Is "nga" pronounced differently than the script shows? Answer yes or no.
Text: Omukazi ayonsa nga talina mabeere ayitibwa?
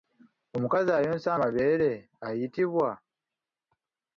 yes